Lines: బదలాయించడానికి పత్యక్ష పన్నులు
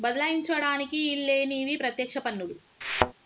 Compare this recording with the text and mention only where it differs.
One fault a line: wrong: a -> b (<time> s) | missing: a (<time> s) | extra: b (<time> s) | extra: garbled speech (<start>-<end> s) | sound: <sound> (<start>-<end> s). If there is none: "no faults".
extra: ఈల్లేనివి (1.0 s)
sound: thud (2.8-3.1 s)